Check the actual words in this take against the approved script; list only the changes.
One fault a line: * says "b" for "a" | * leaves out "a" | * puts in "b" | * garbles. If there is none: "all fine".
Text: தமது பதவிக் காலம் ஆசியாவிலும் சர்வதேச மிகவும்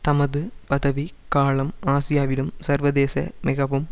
all fine